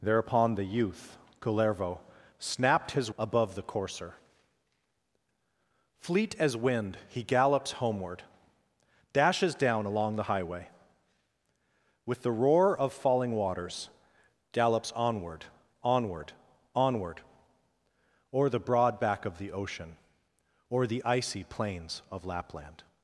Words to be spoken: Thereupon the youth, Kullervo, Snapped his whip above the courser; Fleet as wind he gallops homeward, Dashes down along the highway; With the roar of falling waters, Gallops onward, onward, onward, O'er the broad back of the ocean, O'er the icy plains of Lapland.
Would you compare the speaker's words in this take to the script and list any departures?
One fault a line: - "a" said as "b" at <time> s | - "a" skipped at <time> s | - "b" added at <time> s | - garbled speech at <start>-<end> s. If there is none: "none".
- "whip" skipped at 3.1 s